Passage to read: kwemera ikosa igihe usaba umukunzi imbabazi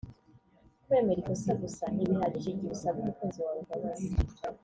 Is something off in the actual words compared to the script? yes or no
yes